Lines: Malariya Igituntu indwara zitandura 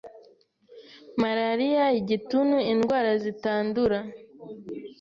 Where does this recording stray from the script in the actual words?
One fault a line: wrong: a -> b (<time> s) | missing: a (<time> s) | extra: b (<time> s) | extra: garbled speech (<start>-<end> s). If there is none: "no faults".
no faults